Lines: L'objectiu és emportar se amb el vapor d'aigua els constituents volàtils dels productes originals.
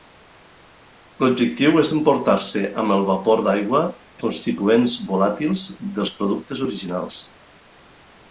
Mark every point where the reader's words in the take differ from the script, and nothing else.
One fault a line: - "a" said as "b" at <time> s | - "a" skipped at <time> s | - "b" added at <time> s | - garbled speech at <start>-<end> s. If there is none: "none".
- "els" skipped at 3.8 s